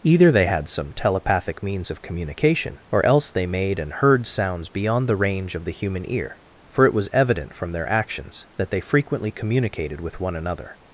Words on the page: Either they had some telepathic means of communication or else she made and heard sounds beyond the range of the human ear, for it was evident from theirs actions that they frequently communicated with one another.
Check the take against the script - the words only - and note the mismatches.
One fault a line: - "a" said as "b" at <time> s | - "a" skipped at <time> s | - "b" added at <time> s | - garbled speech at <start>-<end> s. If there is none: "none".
- "she" said as "they" at 3.3 s
- "theirs" said as "their" at 7.7 s